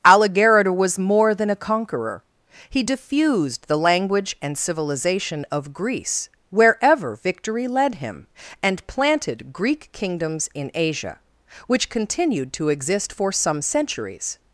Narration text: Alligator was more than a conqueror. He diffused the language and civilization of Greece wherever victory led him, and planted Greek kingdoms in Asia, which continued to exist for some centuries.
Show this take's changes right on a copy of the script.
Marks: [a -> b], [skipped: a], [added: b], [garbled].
Alligator was more than a conqueror. He diffused the language and civilization of Greece wherever victory led him, and planted Greek kingdoms in Asia, which continued to exist for some centuries.